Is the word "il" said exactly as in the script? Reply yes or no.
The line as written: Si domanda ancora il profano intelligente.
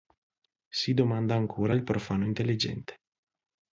yes